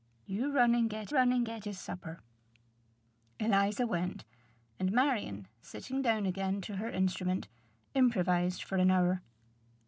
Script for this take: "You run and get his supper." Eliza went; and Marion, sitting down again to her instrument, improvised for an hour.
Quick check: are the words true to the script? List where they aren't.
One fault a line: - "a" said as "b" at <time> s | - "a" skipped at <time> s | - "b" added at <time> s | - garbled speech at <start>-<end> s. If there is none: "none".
- "run and get" added at 1.1 s